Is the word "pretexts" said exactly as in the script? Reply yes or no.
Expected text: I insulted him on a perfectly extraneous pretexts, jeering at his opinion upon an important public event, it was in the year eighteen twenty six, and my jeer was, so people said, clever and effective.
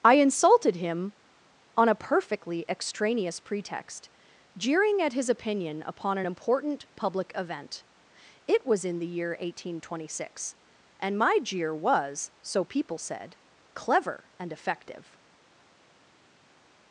no